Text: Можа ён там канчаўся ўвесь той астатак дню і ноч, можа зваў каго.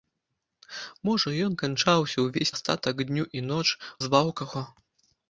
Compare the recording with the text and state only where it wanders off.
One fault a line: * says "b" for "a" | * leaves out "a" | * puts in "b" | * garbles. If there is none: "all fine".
* leaves out "там"
* leaves out "той"
* leaves out "можа"